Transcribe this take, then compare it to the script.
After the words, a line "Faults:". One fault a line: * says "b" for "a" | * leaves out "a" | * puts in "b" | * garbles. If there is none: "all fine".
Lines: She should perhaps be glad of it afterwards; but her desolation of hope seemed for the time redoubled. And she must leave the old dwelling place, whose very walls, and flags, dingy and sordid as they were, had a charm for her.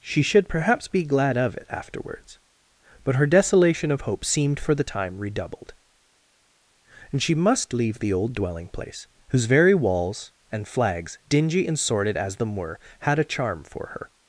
She should perhaps be glad of it afterwards; but her desolation of hope seemed for the time redoubled. And she must leave the old dwelling place, whose very walls, and flags, dingy and sordid as them were, had a charm for her.
Faults:
* says "them" for "they"